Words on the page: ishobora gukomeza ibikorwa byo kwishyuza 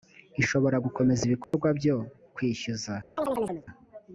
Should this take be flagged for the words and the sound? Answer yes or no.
yes